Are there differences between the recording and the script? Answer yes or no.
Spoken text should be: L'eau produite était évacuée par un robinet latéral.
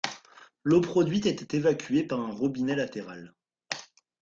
no